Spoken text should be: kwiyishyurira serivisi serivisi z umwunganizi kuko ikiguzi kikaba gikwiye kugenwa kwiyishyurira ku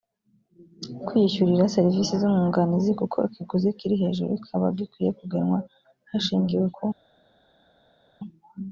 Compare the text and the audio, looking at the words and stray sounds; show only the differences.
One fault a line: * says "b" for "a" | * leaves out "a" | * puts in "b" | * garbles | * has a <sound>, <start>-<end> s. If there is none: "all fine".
* leaves out "serivisi"
* puts in "kiri hejuru"
* says "hashingiwe" for "kwiyishyurira"